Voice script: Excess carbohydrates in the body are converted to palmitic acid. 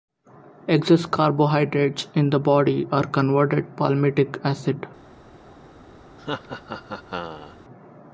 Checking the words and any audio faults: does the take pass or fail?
fail